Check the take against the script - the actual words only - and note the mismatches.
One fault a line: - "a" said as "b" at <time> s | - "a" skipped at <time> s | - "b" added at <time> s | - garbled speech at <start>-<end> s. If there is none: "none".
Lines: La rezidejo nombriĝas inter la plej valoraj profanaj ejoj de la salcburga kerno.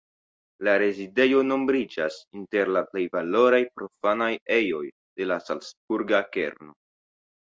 none